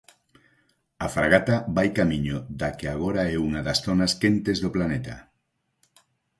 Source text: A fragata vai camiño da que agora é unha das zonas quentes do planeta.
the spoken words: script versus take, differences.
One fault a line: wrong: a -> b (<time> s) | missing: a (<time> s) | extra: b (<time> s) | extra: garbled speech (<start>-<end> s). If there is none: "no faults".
no faults